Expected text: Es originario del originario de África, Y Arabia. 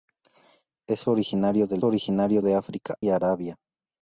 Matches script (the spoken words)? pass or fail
pass